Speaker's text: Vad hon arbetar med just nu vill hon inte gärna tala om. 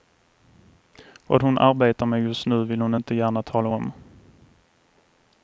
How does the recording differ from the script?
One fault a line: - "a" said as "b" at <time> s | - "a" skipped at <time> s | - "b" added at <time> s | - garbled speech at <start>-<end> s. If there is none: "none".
none